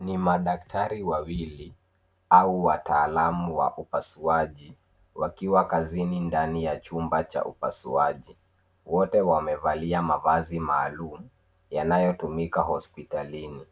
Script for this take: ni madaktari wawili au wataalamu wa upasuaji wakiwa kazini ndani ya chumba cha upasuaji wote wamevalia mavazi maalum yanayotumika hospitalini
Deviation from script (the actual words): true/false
false